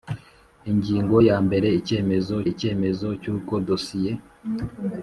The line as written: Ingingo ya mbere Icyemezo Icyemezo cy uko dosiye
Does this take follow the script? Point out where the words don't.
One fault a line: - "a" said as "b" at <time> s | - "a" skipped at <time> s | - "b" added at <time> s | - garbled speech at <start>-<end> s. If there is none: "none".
none